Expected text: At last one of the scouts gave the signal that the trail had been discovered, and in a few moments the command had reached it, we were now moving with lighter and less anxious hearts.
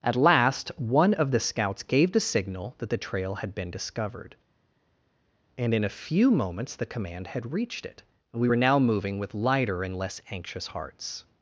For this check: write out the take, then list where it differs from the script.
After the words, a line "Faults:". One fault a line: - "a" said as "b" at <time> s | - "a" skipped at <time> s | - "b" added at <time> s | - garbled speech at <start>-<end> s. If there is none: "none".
At last one of the scouts gave the signal that the trail had been discovered, and in a few moments the command had reached it, we were now moving with lighter and less anxious hearts.
Faults:
none